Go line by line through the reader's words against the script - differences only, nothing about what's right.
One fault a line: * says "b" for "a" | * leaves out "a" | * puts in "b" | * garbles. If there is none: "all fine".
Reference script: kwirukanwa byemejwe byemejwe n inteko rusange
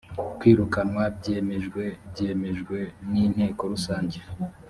all fine